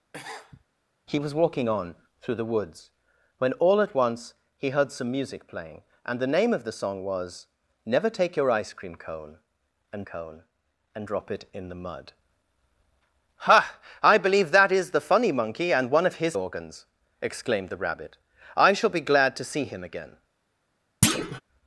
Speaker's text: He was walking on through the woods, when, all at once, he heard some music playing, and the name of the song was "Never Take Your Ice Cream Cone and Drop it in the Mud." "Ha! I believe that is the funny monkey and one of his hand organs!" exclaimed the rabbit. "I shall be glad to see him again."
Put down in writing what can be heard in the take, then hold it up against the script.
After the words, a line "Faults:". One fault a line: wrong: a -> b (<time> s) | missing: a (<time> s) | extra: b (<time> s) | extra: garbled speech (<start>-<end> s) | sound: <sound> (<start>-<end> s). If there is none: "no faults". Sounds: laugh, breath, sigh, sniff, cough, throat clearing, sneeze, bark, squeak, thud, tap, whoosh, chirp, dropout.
He was walking on through the woods, when, all at once, he heard some music playing, and the name of the song was "Never Take Your Ice Cream Cone and Cone and Drop it in the Mud." "Ha! I believe that is the funny monkey and one of his organs!" exclaimed the rabbit. "I shall be glad to see him again."
Faults:
sound: sniff (0.1-0.6 s)
extra: Cone and (10.0 s)
missing: hand (16.4 s)
sound: thud (21.0-21.4 s)